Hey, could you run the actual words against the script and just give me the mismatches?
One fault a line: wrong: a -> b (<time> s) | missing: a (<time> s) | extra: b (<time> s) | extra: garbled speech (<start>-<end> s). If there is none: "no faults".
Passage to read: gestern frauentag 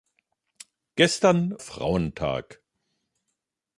no faults